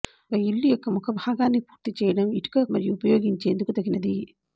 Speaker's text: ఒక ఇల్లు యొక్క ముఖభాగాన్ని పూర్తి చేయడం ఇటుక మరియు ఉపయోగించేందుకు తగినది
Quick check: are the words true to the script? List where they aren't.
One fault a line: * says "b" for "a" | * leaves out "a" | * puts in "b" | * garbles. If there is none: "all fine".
all fine